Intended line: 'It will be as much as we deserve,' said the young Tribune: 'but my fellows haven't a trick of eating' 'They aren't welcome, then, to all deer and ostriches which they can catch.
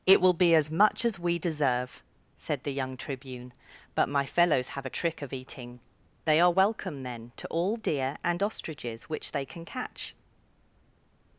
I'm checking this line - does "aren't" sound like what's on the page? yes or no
no